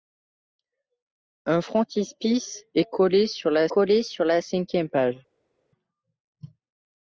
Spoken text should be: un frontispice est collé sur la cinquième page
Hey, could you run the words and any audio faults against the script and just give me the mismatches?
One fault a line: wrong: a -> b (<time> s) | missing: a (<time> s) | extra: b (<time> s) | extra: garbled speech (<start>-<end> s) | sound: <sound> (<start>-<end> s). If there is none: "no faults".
extra: collé sur la (3.7 s)